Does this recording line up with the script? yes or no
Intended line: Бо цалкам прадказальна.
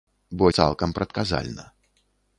yes